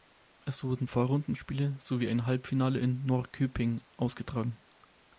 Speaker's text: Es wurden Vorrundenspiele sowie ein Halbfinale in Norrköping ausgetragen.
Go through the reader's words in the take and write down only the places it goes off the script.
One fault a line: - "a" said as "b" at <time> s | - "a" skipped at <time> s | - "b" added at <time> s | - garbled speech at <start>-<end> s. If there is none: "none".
none